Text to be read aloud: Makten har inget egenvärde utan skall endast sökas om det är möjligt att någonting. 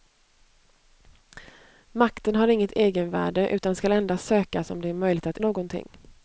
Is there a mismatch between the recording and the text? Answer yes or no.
no